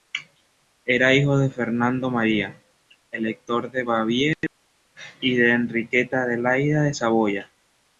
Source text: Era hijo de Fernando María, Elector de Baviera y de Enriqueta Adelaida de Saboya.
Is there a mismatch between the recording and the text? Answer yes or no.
no